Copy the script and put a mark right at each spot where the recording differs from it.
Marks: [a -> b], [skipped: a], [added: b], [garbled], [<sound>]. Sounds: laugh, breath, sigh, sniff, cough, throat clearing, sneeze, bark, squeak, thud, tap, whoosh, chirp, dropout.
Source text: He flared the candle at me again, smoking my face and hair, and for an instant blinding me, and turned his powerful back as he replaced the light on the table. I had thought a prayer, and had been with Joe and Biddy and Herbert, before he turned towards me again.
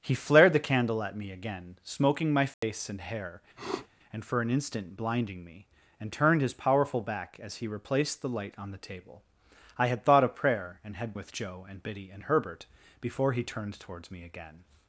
He flared the candle at me again, smoking my face [dropout] and hair, [sniff] and for an instant blinding me, and turned his powerful back as he replaced the light on the table. I had thought a prayer, and had [skipped: been] with Joe and Biddy and Herbert, before he turned towards me again.